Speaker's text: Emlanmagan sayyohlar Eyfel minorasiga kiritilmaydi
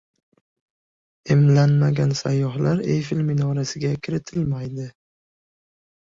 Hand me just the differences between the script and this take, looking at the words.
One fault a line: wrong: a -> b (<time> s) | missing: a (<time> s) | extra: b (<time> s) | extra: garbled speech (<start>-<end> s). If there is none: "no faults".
no faults